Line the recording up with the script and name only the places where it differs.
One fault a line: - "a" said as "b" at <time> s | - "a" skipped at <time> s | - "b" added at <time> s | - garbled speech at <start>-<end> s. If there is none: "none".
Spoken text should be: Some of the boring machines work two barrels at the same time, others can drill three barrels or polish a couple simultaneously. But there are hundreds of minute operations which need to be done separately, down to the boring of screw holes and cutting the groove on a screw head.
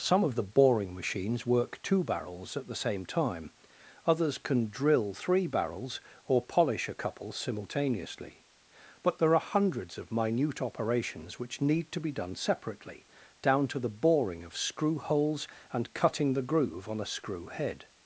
none